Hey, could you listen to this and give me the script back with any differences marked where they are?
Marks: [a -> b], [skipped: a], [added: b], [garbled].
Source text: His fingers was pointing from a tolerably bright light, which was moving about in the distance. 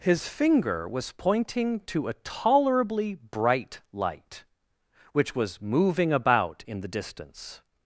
His [fingers -> finger] was pointing [from -> to] a tolerably bright light, which was moving about in the distance.